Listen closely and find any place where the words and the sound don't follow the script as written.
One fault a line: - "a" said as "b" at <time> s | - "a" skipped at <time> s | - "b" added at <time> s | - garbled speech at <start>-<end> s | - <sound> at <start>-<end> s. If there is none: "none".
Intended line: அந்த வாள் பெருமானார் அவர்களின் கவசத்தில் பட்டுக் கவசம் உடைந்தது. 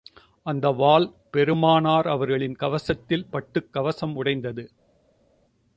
none